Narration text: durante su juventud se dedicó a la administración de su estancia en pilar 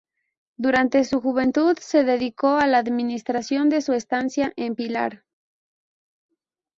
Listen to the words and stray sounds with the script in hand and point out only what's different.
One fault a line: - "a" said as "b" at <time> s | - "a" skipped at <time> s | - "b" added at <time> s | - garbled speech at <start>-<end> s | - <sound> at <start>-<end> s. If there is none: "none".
none